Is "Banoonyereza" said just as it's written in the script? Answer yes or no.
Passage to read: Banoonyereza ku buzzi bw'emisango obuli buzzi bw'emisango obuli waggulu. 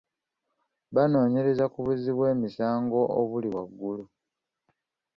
yes